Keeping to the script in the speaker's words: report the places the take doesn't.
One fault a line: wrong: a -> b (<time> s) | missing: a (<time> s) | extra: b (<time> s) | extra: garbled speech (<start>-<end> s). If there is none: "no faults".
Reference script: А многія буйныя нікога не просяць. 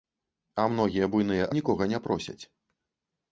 no faults